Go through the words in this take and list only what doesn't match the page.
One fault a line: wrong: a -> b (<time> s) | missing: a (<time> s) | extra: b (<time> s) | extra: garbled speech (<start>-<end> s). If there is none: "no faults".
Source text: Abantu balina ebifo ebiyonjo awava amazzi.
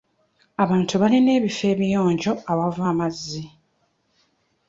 no faults